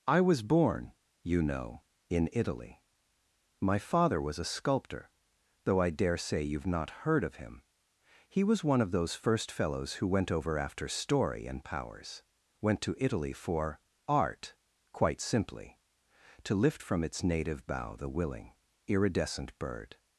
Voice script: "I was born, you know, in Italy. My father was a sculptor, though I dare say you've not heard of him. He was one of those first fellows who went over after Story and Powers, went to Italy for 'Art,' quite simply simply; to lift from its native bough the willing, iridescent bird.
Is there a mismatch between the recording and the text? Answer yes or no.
yes